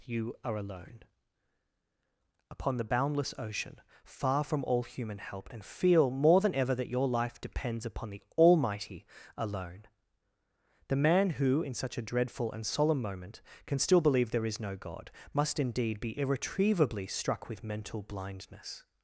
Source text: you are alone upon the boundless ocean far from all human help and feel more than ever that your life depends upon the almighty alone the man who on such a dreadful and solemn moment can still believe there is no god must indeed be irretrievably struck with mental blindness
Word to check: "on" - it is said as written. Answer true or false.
false